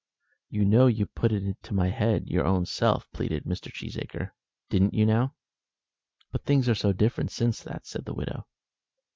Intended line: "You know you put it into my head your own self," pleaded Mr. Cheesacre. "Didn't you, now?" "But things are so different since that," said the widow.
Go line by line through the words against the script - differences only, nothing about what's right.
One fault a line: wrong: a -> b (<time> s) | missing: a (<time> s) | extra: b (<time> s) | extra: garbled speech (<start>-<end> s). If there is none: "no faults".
no faults